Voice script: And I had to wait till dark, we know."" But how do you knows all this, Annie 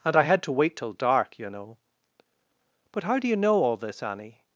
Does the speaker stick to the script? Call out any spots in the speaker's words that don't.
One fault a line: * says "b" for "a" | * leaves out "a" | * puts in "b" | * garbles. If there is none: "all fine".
* says "yoU" for "we"
* says "know" for "knows"